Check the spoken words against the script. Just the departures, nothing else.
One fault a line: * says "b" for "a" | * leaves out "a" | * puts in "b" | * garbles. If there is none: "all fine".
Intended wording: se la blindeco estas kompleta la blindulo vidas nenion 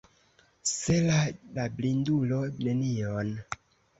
* leaves out "blindeco estas kompleta"
* leaves out "vidas"